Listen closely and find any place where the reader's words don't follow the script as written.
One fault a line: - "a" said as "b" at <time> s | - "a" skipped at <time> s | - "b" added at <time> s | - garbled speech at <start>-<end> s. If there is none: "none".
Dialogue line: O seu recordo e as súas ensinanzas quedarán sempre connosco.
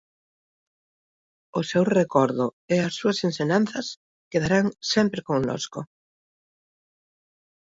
none